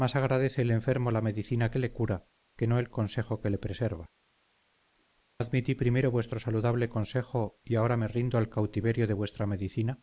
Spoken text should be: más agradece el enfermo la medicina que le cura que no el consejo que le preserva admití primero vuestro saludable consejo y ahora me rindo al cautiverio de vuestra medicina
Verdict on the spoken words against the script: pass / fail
pass